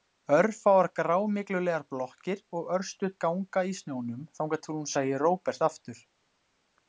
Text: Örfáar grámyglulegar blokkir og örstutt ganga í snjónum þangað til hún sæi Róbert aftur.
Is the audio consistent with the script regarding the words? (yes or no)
yes